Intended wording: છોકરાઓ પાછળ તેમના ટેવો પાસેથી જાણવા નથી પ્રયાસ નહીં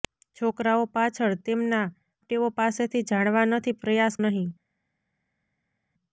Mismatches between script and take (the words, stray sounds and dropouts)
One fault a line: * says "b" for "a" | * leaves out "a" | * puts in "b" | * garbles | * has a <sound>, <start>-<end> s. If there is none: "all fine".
all fine